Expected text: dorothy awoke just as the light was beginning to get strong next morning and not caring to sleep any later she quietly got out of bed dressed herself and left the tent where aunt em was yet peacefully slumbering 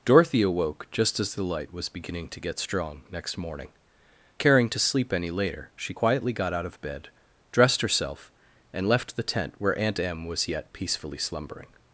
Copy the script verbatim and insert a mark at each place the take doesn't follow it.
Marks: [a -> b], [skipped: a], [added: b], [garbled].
dorothy awoke just as the light was beginning to get strong next morning [skipped: and not] caring to sleep any later she quietly got out of bed dressed herself and left the tent where aunt em was yet peacefully slumbering